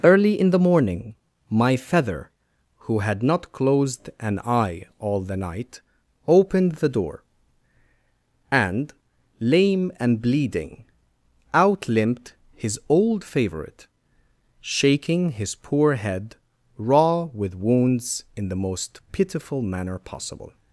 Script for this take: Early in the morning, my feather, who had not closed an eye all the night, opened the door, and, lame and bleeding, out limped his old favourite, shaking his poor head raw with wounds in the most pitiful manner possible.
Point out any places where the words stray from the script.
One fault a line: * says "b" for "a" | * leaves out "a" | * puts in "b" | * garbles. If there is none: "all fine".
all fine